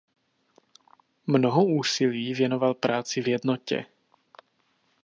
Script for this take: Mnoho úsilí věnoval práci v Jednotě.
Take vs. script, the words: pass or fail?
pass